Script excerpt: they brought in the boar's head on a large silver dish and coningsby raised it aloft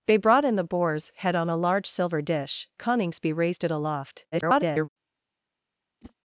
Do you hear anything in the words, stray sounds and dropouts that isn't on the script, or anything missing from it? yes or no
yes